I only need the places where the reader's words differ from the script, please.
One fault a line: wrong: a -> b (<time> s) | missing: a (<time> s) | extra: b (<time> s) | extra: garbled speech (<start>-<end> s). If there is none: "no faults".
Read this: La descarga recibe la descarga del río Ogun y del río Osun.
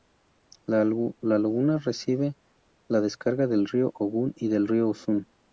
wrong: descarga -> laguna (0.8 s)